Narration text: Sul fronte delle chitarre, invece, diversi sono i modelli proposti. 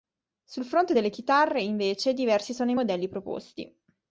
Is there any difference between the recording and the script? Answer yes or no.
no